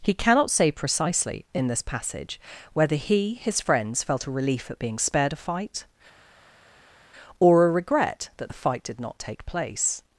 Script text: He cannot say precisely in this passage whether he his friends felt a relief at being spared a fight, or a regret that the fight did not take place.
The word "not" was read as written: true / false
true